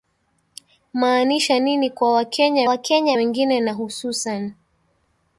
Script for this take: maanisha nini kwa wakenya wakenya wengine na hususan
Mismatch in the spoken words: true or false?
false